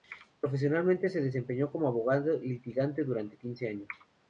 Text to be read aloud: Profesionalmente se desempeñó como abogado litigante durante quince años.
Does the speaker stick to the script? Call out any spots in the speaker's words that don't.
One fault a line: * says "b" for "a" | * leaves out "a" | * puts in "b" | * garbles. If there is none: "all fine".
all fine